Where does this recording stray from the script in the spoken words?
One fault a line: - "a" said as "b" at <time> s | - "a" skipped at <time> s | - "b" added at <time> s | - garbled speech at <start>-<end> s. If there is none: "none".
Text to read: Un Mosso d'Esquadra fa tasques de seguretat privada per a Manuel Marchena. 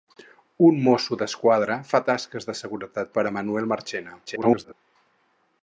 - "privada" skipped at 3.1 s
- garbled speech at 4.3-4.7 s